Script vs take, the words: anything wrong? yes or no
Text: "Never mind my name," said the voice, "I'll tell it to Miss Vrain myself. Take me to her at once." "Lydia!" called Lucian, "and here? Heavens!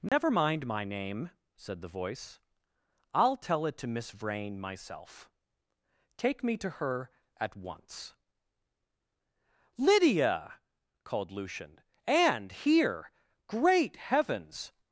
yes